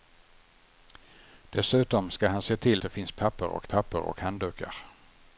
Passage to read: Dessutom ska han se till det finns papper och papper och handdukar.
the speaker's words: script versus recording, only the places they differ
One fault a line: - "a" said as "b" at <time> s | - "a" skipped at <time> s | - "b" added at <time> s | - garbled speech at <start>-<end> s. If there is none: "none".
none